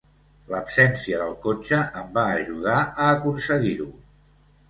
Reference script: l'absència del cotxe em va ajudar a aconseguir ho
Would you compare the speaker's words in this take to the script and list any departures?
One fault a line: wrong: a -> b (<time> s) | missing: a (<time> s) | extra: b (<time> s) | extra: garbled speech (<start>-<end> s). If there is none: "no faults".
no faults